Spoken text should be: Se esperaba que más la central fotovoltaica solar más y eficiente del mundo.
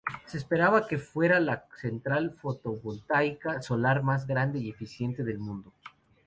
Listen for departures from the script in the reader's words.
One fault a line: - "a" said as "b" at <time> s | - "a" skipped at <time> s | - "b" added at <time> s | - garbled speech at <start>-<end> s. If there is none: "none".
- "más" said as "fuera" at 1.0 s
- "grande" added at 4.3 s